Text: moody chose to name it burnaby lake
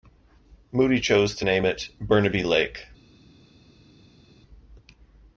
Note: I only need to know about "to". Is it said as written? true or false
true